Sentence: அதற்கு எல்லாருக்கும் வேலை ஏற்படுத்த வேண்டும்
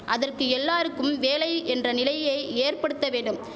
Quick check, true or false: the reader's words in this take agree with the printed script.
false